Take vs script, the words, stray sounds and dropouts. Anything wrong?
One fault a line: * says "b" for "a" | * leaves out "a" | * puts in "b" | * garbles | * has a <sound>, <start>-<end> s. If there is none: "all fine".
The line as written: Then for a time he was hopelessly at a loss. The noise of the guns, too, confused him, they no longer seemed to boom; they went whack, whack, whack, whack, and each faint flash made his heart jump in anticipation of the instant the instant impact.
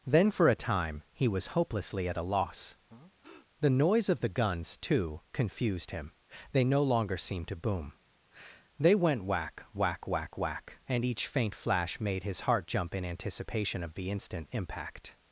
* has a breath, 2.9-3.5 s
* leaves out "the instant"